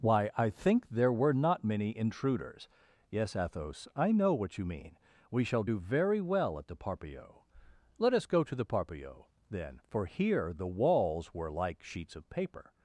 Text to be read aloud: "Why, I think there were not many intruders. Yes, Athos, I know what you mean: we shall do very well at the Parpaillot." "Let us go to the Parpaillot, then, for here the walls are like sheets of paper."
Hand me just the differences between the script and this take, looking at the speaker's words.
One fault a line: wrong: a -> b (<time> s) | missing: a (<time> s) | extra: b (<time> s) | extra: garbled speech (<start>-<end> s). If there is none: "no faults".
wrong: are -> were (11.3 s)